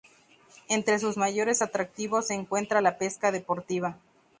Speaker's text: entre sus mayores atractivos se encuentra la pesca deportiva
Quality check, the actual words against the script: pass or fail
pass